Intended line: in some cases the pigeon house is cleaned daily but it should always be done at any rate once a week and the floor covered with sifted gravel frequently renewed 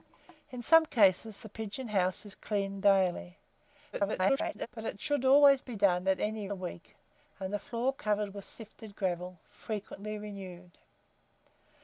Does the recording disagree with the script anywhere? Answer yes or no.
yes